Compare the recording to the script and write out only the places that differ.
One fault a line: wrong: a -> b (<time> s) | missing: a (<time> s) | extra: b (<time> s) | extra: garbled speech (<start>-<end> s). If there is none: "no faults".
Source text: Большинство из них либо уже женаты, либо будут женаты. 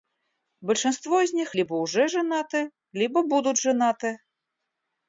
no faults